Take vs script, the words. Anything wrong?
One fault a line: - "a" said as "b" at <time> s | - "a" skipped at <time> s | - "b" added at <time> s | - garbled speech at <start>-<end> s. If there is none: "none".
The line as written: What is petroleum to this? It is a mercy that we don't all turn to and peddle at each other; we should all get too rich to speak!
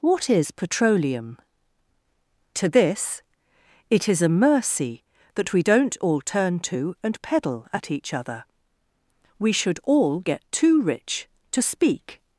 none